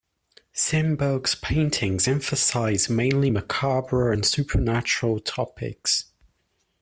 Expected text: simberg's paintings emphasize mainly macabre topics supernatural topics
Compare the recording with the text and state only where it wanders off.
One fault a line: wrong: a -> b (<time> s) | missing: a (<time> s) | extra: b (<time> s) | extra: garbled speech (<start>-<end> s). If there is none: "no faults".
wrong: topics -> and (4.1 s)